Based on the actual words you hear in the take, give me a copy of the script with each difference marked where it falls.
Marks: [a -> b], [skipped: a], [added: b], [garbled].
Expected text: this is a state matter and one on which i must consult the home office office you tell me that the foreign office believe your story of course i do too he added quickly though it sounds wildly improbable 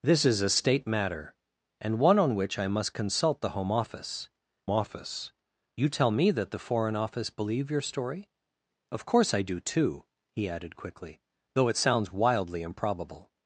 this is a state matter and one on which i must consult the home office office you tell me that the foreign office believe your story of course i do too he added quickly though it sounds wildly improbable